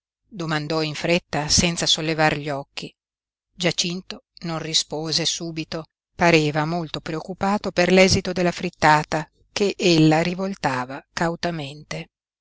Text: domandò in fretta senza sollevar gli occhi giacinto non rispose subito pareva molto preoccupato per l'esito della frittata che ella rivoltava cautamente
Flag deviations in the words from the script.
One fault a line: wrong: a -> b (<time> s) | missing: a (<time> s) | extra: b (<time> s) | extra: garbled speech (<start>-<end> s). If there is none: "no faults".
no faults